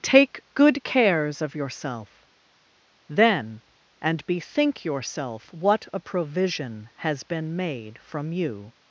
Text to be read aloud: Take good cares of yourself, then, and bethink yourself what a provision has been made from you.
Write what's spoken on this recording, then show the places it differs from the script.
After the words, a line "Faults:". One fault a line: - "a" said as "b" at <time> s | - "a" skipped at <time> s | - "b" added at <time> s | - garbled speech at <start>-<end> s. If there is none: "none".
Take good cares of yourself, then, and bethink yourself what a provision has been made from you.
Faults:
none